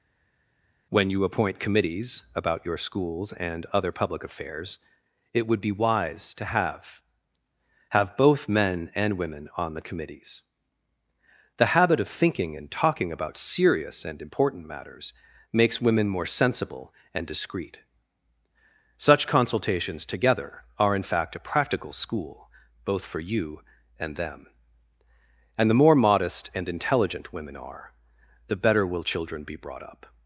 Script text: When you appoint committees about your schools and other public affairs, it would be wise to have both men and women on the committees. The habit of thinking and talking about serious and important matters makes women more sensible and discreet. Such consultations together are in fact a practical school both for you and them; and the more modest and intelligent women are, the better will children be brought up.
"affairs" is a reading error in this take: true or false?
false